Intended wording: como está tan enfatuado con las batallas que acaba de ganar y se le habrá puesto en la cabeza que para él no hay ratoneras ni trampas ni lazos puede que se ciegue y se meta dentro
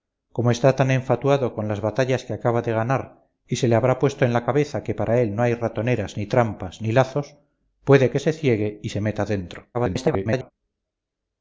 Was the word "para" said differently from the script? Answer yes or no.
no